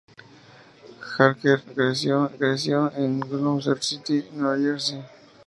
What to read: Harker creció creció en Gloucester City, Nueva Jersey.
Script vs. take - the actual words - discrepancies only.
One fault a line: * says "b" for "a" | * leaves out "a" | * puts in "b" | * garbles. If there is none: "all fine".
all fine